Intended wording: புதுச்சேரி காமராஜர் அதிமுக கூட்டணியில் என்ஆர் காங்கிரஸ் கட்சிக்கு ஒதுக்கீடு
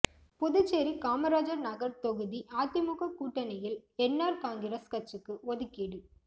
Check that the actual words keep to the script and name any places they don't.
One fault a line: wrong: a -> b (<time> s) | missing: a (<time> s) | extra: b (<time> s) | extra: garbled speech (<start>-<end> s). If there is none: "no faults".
extra: நகர் தொகுதி (1.6 s)